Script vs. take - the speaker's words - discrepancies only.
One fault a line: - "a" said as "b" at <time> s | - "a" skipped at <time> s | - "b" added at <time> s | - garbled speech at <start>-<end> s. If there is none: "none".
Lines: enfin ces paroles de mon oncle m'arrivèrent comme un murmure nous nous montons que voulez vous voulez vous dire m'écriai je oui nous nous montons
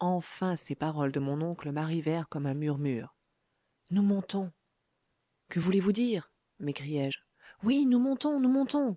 - "nous" skipped at 4.0 s
- "voulez vous" skipped at 5.9 s
- "montons" added at 8.0 s